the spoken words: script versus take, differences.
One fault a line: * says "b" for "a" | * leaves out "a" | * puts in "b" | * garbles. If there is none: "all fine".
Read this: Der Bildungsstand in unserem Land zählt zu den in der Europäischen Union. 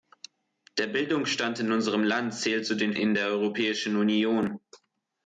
all fine